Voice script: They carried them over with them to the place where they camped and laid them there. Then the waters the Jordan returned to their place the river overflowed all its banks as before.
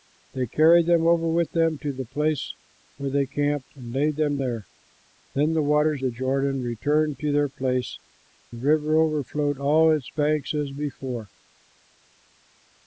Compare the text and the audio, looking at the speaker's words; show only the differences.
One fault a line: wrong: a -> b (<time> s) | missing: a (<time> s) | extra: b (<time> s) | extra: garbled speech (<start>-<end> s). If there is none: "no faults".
no faults